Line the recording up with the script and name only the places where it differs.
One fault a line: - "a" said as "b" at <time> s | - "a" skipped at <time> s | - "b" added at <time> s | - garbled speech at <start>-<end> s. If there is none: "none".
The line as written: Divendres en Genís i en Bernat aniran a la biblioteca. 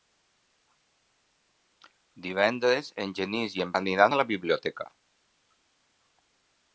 - "Bernat" skipped at 3.8 s